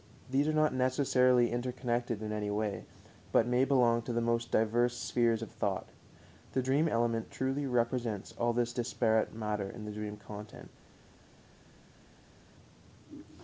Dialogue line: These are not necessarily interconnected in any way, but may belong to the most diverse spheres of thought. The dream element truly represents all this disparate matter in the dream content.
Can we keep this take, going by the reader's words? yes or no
yes